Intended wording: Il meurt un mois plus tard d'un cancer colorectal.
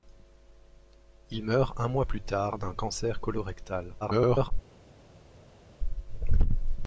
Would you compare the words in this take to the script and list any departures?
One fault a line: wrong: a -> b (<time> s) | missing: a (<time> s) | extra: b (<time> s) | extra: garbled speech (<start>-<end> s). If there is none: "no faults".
extra: garbled speech (4.0-4.5 s)